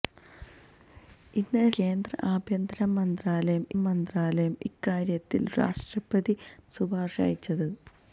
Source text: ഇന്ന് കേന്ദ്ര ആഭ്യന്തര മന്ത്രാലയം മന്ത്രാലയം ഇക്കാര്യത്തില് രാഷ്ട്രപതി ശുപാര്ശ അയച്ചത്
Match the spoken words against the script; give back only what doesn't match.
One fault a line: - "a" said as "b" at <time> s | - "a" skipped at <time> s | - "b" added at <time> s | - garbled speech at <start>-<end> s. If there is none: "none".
none